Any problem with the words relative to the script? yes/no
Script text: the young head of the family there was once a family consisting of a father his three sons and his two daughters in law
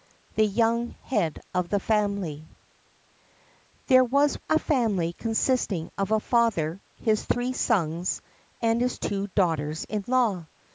yes